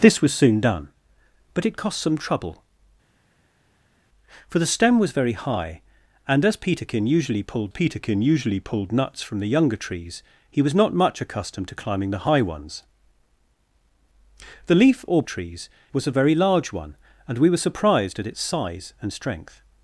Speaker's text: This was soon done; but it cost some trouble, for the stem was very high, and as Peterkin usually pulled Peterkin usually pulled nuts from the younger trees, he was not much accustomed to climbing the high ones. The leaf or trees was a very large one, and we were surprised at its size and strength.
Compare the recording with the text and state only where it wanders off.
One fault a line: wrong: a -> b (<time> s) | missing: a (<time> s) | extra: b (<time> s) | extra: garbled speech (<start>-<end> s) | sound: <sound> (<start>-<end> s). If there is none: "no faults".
no faults